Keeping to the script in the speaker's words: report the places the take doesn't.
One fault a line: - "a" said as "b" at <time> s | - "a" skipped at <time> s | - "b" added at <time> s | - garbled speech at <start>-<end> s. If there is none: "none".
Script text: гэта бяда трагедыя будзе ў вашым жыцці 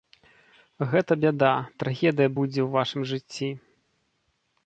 none